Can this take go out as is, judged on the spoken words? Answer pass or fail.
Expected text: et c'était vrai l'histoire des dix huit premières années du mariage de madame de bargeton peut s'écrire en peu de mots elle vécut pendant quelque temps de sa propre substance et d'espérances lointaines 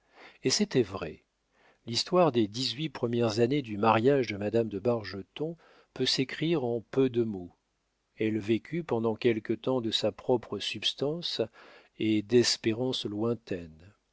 pass